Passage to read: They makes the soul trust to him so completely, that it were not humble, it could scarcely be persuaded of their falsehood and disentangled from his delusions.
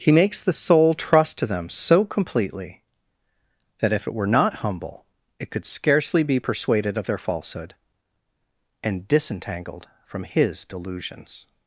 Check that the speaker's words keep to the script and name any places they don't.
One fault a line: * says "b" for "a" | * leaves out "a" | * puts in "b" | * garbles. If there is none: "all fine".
* says "He" for "They"
* says "them" for "him"
* puts in "if"